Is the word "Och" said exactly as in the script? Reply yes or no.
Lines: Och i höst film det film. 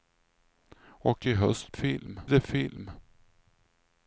yes